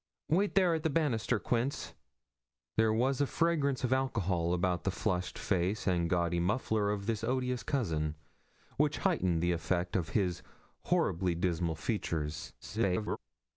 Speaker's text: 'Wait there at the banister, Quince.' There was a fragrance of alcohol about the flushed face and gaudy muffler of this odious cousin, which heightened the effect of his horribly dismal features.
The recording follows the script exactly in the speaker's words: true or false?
false